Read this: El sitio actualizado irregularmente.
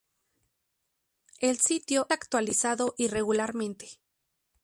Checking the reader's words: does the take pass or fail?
pass